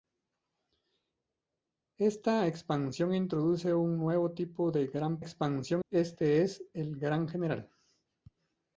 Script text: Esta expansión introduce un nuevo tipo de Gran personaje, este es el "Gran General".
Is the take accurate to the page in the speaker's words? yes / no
no